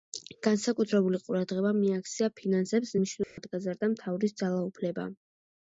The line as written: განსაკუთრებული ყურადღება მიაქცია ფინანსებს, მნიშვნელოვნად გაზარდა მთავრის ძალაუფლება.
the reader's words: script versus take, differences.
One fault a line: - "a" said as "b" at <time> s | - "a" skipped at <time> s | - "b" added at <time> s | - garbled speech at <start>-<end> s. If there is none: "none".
none